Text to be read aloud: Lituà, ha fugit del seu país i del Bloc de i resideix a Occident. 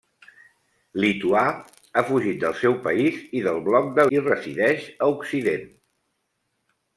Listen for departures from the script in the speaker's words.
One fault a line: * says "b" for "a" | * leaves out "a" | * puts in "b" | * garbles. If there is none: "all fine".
all fine